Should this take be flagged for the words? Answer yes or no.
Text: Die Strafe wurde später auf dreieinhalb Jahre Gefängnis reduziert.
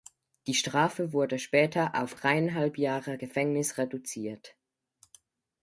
no